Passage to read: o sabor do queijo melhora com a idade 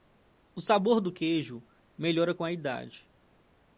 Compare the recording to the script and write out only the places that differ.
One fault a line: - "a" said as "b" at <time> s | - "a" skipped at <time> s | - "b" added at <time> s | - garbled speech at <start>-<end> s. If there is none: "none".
none